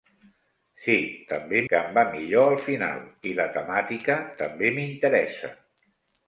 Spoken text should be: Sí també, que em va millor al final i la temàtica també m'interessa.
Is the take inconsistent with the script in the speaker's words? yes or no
no